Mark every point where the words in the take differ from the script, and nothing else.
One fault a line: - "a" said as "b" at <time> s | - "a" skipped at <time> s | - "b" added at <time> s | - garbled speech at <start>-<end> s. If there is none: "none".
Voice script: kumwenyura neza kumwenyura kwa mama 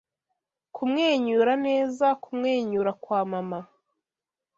none